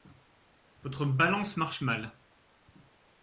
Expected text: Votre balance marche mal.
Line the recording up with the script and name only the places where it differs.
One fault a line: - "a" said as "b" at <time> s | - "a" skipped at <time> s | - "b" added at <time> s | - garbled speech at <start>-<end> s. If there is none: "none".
none